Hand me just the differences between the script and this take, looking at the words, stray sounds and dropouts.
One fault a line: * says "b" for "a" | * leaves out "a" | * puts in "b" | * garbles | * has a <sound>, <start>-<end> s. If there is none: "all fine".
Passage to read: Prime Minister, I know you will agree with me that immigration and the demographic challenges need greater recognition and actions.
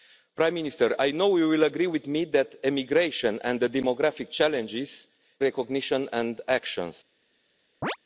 * leaves out "need greater"
* has a chirp, 7.8-8.0 s